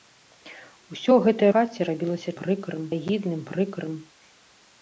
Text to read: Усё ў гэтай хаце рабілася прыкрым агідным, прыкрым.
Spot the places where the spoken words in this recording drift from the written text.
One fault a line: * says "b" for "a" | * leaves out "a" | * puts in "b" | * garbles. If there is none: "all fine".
all fine